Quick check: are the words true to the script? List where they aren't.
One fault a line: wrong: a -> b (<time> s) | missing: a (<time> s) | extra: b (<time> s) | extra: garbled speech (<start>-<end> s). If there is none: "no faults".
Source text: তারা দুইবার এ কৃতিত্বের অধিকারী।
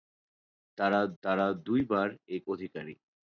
extra: তারা (1.2 s)
missing: কৃতিত্বের (2.4 s)